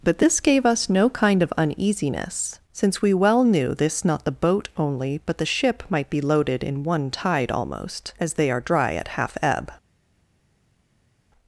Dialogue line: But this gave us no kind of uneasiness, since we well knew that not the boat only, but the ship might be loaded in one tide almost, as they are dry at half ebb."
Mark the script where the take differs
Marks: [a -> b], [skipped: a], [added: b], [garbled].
But this gave us no kind of uneasiness, since we well knew [that -> this] not the boat only, but the ship might be loaded in one tide almost, as they are dry at half ebb."